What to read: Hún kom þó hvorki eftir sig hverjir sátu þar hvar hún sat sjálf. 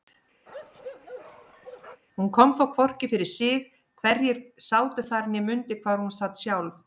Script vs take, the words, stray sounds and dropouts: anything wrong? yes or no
yes